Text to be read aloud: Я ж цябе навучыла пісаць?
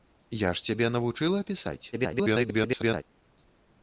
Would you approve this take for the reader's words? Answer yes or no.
no